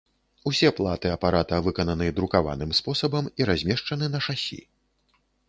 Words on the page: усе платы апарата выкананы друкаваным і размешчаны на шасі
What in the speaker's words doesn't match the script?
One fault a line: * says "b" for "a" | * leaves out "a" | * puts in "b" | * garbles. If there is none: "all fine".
* puts in "спосабам"